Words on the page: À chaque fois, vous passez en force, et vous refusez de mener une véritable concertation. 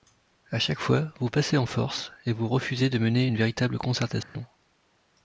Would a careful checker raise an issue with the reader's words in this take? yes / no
no